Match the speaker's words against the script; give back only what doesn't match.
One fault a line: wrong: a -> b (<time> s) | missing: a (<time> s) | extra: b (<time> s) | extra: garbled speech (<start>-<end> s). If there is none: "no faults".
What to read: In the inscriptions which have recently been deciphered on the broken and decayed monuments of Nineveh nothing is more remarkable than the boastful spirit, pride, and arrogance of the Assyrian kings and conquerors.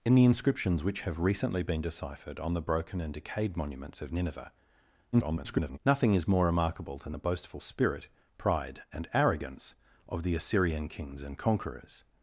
extra: garbled speech (5.1-5.8 s)